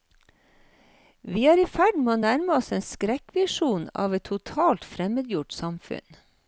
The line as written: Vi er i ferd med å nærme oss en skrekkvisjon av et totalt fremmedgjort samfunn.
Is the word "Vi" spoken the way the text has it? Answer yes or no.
yes